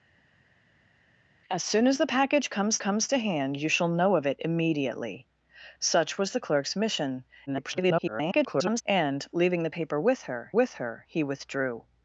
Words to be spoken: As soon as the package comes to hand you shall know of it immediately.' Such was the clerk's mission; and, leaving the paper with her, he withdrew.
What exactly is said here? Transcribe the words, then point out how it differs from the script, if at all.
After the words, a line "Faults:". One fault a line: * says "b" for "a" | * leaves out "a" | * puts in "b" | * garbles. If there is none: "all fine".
As soon as the package comes comes to hand you shall know of it immediately.' Such was the clerk's mission; [garbled] and, leaving the paper with her with her, he withdrew.
Faults:
* puts in "comes"
* garbles
* puts in "with her"